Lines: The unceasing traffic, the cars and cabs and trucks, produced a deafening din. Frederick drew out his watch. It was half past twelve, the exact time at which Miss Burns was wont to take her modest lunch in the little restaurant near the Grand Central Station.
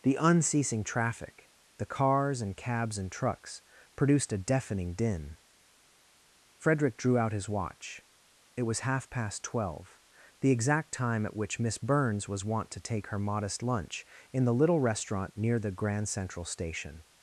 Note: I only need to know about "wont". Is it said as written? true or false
true